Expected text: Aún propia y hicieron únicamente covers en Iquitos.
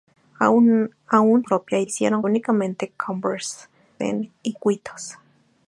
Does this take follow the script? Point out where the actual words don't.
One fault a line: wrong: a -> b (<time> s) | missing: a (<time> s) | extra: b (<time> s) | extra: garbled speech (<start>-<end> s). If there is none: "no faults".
no faults